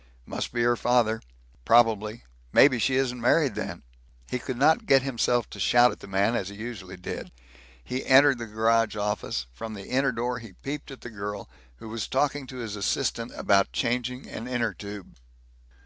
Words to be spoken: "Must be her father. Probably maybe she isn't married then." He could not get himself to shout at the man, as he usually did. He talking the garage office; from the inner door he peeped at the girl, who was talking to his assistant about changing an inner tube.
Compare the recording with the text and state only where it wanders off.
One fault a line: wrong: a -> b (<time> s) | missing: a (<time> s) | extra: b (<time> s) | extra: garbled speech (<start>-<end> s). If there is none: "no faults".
wrong: talking -> entered (8.1 s)